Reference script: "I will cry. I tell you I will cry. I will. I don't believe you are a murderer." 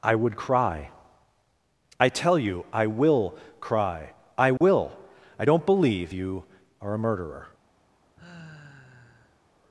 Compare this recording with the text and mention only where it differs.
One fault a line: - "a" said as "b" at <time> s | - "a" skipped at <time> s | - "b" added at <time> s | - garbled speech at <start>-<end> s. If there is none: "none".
- "will" said as "would" at 0.1 s